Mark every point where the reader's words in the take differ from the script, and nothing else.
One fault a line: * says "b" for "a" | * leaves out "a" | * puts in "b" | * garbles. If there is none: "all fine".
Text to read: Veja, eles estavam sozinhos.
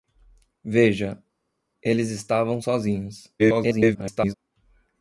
* garbles